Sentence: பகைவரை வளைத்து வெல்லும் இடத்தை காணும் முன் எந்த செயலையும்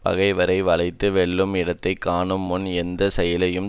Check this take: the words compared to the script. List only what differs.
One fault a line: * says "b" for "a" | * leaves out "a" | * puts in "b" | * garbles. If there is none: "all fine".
all fine